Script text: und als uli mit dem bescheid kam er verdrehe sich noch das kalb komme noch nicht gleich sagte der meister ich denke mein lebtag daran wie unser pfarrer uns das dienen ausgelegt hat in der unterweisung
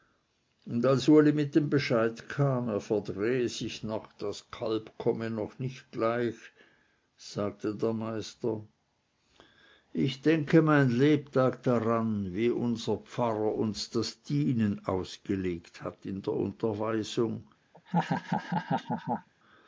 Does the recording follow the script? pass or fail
pass